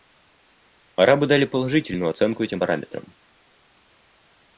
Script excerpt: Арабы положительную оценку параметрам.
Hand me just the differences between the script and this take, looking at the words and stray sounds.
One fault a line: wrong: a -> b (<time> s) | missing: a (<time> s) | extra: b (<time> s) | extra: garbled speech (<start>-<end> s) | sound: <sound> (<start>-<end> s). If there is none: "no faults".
extra: дали (1.3 s)
extra: этим (2.4 s)